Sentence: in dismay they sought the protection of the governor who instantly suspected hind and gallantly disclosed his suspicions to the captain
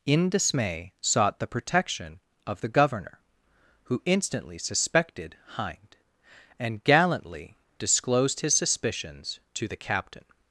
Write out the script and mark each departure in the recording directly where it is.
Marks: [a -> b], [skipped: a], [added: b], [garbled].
in dismay [skipped: they] sought the protection of the governor who instantly suspected hind and gallantly disclosed his suspicions to the captain